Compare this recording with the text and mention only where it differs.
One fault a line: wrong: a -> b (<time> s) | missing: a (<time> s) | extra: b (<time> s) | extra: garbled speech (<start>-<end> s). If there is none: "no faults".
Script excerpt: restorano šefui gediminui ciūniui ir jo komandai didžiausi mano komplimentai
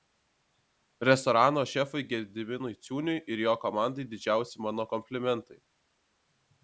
no faults